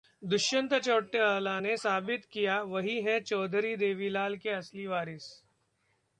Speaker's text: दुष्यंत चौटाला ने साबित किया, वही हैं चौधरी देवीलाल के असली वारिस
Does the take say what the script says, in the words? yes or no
yes